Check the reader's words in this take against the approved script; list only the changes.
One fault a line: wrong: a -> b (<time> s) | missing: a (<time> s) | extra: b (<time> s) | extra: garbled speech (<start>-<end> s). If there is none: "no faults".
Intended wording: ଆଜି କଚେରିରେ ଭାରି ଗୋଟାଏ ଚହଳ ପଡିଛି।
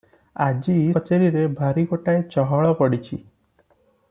no faults